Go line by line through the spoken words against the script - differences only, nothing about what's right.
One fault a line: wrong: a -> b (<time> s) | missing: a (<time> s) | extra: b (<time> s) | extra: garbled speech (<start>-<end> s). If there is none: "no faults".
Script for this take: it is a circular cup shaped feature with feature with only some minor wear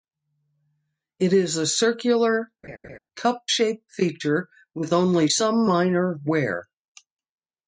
missing: feature with (4.9 s)